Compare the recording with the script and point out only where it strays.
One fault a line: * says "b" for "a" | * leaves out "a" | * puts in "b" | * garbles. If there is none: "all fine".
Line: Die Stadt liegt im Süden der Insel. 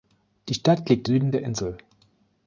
* leaves out "im"